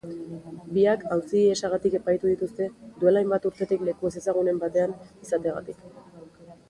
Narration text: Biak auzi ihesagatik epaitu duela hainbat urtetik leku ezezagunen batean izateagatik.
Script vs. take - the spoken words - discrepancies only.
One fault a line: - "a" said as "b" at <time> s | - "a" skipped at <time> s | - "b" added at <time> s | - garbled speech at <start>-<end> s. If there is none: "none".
- "dituzte" added at 2.3 s